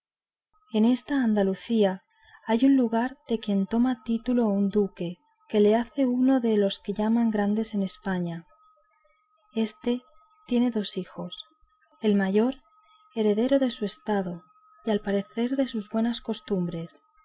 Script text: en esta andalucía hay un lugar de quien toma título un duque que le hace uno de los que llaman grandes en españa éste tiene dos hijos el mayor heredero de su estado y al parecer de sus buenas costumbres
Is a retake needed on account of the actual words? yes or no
no